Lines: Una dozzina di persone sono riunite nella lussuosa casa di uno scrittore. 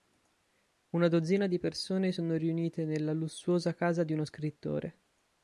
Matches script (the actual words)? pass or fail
pass